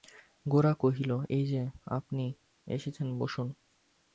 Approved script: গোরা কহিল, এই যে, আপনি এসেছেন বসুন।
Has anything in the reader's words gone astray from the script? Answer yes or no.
no